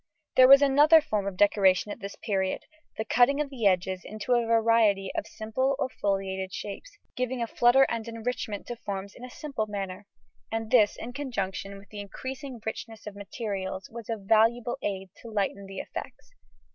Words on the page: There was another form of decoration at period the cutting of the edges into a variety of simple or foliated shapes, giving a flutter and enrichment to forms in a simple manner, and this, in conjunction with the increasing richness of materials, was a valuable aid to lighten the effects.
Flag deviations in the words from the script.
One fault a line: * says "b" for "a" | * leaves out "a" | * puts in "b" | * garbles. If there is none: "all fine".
* puts in "this"